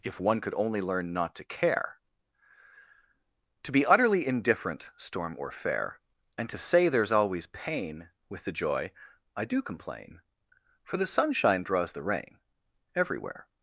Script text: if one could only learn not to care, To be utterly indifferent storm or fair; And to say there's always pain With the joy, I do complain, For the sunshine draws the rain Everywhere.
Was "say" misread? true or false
false